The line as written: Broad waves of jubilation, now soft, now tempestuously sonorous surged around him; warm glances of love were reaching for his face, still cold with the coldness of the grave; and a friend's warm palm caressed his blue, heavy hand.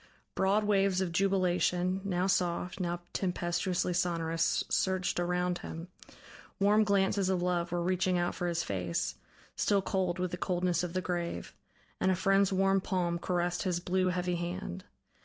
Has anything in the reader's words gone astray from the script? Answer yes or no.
yes